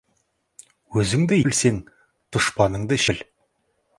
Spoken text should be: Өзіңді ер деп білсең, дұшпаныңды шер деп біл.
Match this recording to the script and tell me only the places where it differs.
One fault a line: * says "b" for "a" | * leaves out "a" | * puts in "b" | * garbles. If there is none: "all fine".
* leaves out "ер деп"
* leaves out "шер деп"